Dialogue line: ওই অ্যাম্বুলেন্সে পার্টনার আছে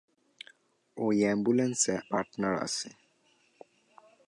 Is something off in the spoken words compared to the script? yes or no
no